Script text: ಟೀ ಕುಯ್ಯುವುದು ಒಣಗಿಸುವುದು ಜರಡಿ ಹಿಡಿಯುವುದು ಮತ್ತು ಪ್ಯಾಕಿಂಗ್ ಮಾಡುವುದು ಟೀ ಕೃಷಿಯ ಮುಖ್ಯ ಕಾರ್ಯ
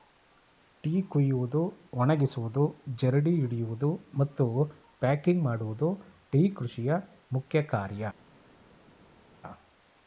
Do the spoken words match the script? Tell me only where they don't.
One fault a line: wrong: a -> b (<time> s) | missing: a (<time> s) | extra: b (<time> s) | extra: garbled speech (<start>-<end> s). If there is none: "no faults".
no faults